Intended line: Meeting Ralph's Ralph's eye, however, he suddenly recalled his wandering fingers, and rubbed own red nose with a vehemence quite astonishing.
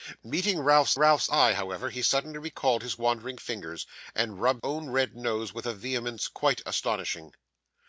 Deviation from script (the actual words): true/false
false